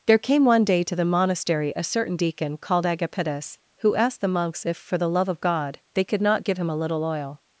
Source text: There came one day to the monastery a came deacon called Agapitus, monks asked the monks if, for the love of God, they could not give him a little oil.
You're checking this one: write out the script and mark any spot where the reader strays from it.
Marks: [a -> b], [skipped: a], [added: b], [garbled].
There came one day to the monastery a [came -> certain] deacon called Agapitus, [monks -> who] asked the monks if, for the love of God, they could not give him a little oil.